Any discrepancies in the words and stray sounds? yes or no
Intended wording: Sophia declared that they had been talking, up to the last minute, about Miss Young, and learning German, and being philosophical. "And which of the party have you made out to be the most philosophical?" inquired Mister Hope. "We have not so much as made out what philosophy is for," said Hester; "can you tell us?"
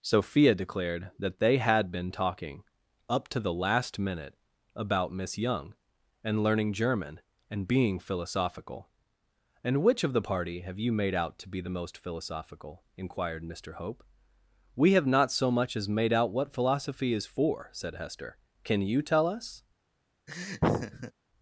yes